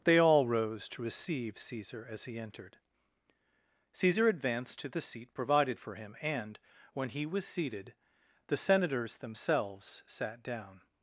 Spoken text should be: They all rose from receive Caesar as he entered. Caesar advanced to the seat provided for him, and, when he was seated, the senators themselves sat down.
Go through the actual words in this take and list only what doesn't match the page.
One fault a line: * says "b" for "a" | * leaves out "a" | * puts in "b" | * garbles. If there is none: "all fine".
* says "to" for "from"